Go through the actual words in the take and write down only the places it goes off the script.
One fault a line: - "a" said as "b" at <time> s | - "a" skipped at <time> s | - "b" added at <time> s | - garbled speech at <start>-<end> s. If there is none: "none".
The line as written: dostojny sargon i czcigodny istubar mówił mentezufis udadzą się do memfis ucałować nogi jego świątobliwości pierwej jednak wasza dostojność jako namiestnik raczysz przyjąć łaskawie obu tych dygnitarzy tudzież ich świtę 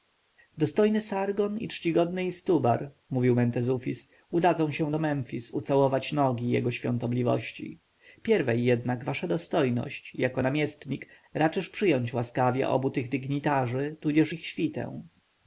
none